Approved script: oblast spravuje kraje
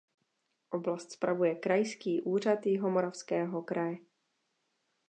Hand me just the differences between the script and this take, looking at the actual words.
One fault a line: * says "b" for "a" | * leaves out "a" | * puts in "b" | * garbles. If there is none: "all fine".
* puts in "krajský úřad jihomoravského"